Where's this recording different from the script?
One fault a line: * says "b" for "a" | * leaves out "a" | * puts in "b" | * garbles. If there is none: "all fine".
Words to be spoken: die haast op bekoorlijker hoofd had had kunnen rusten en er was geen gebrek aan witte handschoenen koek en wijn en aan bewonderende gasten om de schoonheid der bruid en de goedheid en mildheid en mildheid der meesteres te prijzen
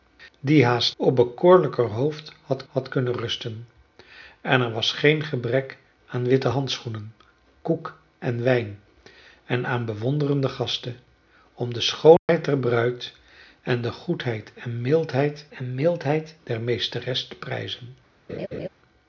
all fine